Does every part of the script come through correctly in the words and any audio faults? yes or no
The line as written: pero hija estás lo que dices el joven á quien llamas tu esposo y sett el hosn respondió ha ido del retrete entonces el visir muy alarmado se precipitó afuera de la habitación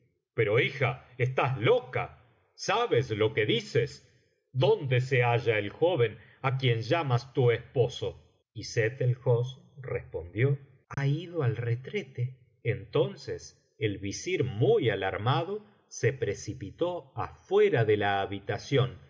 no